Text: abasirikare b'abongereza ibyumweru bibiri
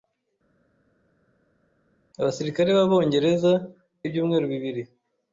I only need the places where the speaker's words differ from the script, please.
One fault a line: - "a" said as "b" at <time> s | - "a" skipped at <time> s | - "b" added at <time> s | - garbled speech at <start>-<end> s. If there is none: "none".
none